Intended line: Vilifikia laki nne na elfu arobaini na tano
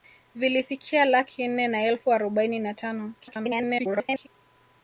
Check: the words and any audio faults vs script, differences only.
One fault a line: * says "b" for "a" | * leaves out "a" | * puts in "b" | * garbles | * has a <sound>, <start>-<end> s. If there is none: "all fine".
* garbles